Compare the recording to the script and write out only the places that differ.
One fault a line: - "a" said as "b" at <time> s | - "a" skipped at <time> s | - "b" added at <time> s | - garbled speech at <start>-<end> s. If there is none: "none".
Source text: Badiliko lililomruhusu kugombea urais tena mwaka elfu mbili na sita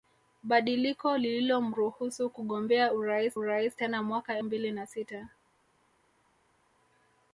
- "urais" added at 3.3 s
- "elfu" skipped at 4.4 s